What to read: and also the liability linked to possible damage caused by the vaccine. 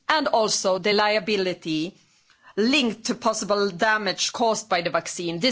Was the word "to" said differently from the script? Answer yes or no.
no